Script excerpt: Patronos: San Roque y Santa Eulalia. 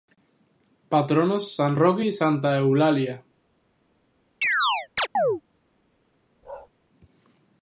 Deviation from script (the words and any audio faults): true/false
true